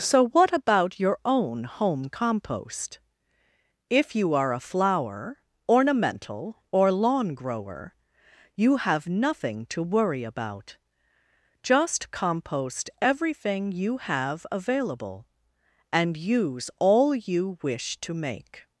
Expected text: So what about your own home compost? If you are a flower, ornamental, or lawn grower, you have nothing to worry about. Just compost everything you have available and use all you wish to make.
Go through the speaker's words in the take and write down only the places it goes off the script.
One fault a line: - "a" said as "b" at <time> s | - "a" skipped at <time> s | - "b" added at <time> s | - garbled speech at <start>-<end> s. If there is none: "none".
none